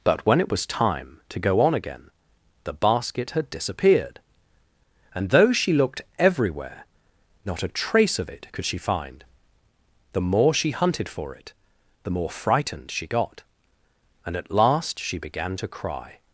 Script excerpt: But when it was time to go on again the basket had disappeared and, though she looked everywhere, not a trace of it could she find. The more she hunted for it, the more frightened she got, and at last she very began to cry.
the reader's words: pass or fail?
fail